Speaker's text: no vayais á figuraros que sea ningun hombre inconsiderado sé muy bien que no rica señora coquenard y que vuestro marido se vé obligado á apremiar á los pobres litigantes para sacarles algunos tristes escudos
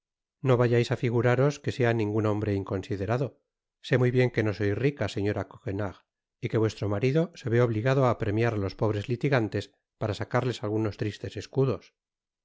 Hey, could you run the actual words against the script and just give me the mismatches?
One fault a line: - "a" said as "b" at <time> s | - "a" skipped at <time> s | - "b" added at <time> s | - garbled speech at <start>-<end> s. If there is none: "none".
- "sois" added at 4.6 s